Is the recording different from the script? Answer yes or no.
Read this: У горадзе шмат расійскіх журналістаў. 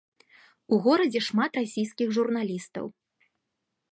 no